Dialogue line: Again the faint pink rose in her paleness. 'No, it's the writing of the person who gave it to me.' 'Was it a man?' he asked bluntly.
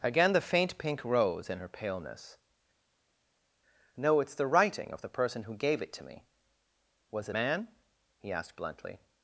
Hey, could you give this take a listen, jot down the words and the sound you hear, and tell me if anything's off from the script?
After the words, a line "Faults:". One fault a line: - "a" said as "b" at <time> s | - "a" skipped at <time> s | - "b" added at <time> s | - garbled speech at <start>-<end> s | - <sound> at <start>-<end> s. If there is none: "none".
Again the faint pink rose in her paleness. 'No, it's the writing of the person who gave it to me.' 'Was it man?' he asked bluntly.
Faults:
- "a" skipped at 7.4 s